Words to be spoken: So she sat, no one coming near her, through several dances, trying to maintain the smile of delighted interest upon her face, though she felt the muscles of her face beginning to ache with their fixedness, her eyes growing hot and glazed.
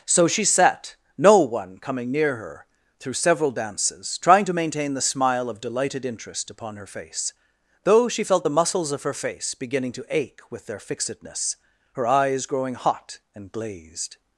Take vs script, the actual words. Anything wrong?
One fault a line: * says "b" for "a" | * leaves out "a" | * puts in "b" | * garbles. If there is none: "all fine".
all fine